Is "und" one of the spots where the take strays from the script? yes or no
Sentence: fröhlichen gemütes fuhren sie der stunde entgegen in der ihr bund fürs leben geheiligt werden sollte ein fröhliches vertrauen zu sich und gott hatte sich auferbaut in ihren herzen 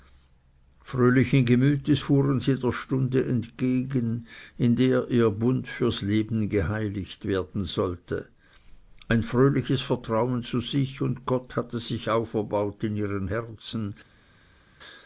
no